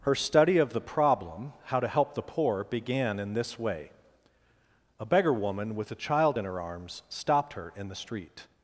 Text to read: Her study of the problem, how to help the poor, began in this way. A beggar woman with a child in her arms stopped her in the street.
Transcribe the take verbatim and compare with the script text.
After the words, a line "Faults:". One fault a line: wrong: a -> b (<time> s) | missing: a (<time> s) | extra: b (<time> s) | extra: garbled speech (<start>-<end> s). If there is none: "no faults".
Her study of the problem, how to help the poor, began in this way. A beggar woman with a child in her arms stopped her in the street.
Faults:
no faults